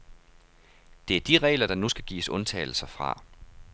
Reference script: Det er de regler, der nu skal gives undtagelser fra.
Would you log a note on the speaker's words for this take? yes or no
no